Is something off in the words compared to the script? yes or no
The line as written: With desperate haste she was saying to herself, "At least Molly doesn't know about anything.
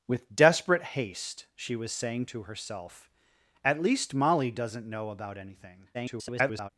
yes